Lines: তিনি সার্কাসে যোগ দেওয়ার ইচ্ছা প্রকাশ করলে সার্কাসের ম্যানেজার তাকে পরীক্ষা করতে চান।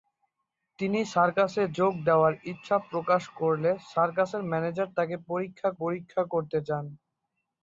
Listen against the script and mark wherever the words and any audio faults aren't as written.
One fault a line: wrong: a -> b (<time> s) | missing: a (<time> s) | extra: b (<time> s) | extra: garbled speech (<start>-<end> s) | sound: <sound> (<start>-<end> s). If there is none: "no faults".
extra: পরীক্ষা (5.8 s)